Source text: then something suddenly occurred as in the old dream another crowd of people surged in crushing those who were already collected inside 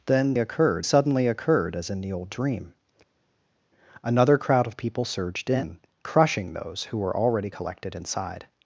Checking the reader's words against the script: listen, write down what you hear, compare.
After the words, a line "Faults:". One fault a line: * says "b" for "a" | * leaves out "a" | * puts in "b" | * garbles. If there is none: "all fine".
then occurred suddenly occurred as in the old dream another crowd of people surged in crushing those who were already collected inside
Faults:
* says "occurred" for "something"